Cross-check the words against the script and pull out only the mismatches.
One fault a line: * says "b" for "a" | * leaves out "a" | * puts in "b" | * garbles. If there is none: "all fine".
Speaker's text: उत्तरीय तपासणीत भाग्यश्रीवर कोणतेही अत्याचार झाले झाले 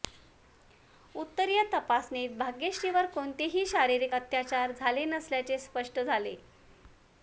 * puts in "शारीरिक"
* puts in "नसल्याचे स्पष्ट"